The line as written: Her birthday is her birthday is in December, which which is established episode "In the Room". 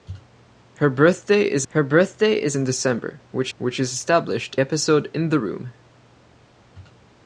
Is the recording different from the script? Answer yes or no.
no